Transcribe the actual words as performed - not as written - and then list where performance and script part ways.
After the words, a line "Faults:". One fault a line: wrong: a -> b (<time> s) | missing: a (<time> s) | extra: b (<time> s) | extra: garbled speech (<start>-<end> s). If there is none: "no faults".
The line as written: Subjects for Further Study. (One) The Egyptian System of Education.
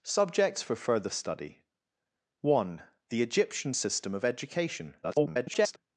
Subjects for Further Study. (One) The Egyptian System of Education. [garbled]
Faults:
extra: garbled speech (5.0-5.8 s)